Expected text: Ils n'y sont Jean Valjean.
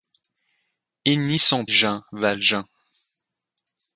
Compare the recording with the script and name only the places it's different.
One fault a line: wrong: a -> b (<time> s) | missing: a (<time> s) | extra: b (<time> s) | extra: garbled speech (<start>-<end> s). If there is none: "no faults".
no faults